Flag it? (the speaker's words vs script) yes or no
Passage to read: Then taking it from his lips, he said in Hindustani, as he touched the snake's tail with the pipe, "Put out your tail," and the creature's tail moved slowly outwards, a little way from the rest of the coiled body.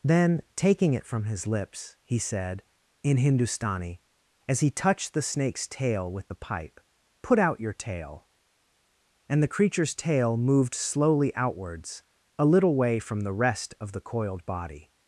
no